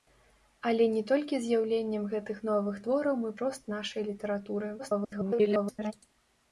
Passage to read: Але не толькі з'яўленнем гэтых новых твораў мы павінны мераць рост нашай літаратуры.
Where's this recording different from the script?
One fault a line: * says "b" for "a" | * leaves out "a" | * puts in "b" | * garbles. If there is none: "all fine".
* leaves out "павінны мераць"
* garbles